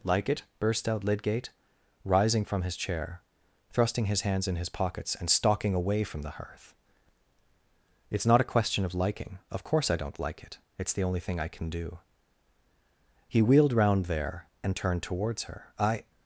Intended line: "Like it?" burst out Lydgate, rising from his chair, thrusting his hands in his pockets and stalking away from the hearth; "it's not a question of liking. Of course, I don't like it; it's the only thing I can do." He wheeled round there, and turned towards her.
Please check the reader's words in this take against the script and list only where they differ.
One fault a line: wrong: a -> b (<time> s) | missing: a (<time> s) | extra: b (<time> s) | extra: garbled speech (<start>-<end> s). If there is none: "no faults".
extra: I (15.8 s)